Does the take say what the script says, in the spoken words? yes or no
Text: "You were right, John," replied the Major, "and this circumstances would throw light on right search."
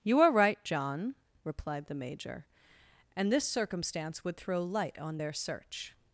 no